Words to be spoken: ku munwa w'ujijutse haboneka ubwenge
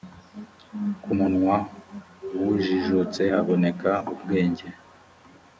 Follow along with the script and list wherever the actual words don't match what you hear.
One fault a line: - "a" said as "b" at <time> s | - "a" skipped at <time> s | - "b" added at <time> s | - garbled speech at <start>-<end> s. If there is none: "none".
none